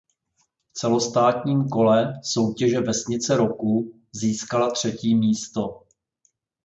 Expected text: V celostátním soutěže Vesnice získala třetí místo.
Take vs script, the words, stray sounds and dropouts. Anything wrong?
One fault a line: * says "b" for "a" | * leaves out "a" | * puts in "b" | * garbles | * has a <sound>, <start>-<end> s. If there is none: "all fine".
* puts in "kole"
* puts in "roku"